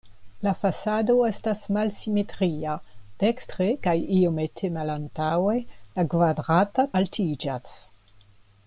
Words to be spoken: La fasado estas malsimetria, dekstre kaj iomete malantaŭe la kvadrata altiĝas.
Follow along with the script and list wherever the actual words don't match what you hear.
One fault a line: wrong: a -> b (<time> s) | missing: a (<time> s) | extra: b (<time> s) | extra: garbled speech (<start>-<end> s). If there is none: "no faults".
no faults